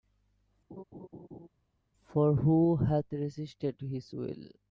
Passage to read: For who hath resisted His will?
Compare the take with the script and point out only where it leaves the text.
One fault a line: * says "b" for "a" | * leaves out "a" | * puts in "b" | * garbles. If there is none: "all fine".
all fine